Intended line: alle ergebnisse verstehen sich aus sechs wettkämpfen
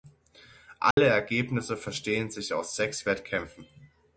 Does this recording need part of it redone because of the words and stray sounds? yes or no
yes